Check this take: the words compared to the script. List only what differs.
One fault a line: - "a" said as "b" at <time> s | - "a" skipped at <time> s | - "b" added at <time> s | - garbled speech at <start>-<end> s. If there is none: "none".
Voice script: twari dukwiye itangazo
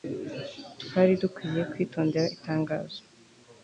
- "kwitondera" added at 1.7 s